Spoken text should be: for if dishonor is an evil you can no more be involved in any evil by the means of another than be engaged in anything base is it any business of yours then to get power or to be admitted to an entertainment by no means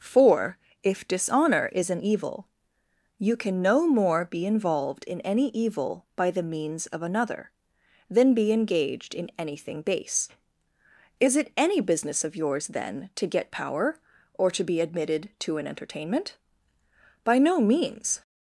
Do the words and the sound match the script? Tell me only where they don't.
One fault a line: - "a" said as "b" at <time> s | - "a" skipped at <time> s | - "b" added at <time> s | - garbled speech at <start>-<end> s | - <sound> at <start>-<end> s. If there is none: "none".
none